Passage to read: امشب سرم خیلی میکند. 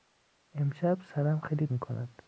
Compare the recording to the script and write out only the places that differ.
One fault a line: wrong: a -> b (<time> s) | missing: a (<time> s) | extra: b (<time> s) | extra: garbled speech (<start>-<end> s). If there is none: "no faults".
no faults